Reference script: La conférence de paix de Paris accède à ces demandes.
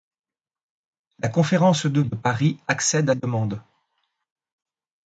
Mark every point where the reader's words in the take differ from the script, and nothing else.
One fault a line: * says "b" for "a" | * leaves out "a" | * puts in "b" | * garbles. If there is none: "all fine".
* leaves out "paix"
* leaves out "ces"